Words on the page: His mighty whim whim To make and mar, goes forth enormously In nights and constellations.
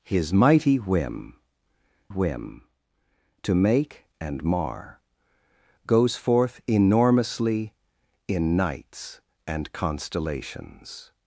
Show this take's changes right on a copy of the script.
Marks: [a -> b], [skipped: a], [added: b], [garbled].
His mighty whim whim To make and mar, goes forth enormously In nights and constellations.